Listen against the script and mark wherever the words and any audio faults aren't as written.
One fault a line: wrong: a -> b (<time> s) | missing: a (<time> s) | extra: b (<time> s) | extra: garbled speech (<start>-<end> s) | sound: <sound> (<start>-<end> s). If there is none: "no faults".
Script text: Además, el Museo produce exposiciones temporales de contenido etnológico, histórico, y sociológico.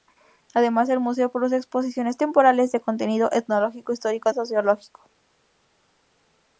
no faults